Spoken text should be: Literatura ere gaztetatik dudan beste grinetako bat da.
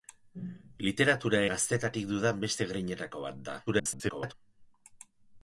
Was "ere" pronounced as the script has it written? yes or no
no